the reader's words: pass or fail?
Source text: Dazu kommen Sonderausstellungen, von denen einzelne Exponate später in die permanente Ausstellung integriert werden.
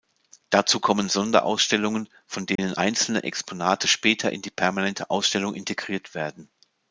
pass